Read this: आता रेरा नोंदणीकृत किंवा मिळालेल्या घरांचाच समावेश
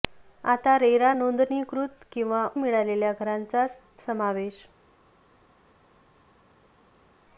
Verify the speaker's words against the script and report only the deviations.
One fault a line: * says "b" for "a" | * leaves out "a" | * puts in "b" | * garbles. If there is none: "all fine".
all fine